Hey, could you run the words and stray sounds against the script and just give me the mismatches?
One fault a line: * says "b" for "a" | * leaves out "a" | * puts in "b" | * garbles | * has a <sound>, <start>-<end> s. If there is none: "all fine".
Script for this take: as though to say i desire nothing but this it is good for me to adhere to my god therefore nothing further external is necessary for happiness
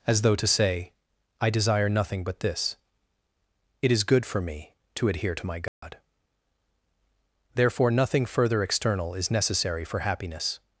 * has a dropout, 5.7-5.8 s